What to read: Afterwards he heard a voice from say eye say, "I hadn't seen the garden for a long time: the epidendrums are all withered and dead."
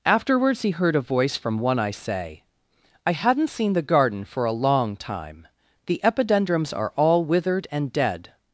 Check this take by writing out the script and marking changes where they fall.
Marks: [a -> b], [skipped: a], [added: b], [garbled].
Afterwards he heard a voice from [say -> one] eye say, "I hadn't seen the garden for a long time: the epidendrums are all withered and dead."